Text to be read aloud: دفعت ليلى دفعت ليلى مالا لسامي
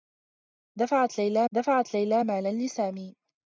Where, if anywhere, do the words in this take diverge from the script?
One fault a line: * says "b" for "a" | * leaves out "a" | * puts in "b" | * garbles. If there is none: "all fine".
all fine